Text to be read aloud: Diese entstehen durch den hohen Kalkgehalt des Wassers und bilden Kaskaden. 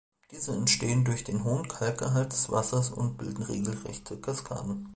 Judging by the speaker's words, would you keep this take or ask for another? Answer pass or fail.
fail